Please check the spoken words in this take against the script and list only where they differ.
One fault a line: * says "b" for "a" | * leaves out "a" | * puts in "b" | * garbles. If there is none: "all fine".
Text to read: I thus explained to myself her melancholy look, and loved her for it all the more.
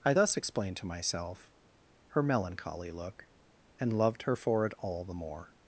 all fine